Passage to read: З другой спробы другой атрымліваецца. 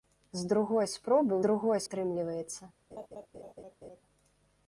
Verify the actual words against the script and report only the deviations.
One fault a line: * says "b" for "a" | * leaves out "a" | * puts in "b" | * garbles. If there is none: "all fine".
all fine